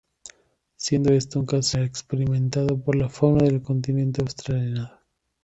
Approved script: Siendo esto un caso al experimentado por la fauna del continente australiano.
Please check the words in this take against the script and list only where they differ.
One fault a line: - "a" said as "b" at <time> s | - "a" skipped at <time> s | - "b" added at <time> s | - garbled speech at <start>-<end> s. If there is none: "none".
none